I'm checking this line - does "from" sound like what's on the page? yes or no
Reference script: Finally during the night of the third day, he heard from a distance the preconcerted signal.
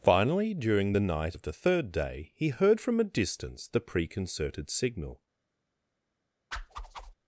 yes